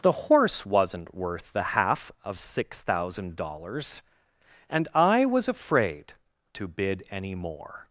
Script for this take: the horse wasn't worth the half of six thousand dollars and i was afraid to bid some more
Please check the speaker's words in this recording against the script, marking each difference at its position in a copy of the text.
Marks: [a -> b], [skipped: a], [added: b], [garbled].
the horse wasn't worth the half of six thousand dollars and i was afraid to bid [some -> any] more